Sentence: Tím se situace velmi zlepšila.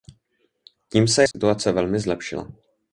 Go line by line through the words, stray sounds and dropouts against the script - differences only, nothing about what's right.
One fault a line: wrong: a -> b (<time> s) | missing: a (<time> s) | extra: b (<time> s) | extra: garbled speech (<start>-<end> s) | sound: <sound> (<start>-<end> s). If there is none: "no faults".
sound: dropout (1.3-1.3 s)